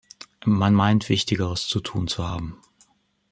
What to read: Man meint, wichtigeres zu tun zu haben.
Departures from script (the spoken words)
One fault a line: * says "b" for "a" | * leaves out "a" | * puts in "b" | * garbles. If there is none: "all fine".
all fine